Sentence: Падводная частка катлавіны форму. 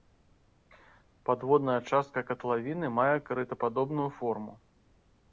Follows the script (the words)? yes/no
no